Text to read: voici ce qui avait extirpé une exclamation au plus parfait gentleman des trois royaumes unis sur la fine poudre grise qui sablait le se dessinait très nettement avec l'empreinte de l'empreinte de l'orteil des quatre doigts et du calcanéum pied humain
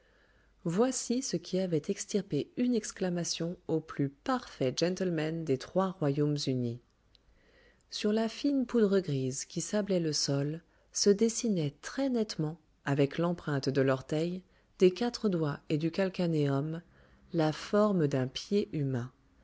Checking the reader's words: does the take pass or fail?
fail